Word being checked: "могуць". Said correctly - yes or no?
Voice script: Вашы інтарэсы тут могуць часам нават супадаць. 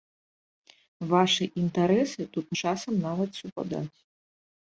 no